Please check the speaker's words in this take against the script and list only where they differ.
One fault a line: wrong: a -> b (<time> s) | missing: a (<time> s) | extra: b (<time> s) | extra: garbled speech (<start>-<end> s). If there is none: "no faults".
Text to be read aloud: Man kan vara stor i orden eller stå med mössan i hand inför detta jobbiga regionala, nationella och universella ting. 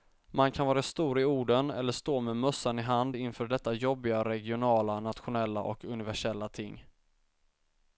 no faults